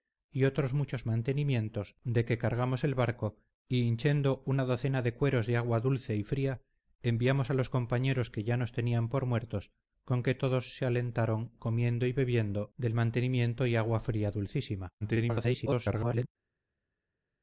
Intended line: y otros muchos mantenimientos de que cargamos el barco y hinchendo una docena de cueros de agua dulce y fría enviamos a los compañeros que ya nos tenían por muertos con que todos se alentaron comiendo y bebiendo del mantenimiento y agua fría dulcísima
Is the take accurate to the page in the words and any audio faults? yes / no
no